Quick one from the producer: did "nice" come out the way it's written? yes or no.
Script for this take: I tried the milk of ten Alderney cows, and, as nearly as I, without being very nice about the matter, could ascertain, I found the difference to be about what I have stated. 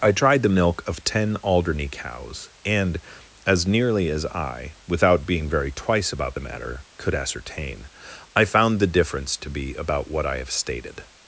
no